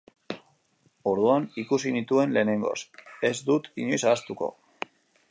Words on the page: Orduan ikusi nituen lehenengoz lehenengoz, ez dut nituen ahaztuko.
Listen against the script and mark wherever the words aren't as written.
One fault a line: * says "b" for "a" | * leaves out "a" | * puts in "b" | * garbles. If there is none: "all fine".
* leaves out "lehenengoz"
* says "inoiz" for "nituen"